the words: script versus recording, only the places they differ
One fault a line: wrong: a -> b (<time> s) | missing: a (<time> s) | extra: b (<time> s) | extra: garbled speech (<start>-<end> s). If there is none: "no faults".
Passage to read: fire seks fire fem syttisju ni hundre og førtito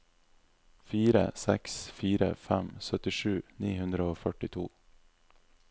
no faults